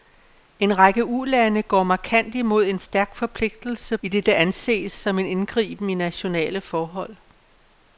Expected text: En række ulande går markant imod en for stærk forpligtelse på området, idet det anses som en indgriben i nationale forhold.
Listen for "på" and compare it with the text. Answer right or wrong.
wrong